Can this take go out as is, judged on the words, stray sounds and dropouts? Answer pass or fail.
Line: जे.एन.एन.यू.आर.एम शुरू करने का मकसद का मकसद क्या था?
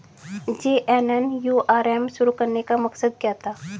fail